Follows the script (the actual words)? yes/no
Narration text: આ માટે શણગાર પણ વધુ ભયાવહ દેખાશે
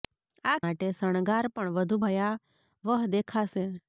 yes